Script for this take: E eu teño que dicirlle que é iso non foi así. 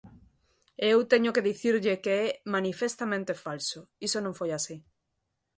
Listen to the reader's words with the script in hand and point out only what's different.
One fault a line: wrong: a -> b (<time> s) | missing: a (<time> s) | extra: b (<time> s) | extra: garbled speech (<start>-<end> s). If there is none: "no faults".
extra: manifestamente falso (2.5 s)